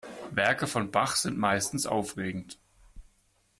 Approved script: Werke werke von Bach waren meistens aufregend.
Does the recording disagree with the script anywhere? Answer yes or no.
yes